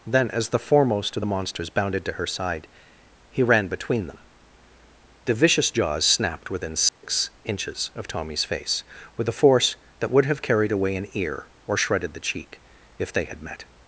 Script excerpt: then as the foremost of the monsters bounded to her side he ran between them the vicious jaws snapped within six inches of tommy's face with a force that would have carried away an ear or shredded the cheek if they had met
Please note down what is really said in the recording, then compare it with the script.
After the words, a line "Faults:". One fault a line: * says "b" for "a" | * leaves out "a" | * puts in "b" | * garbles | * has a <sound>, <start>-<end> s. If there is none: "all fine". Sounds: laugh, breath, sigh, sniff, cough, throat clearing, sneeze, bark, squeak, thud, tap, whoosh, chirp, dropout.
then as the foremost of the monsters bounded to her side he ran between them the vicious jaws snapped within six inches of tommy's face with a force that would have carried away an ear or shredded the cheek if they had met
Faults:
* has a dropout, 6.9-7.0 s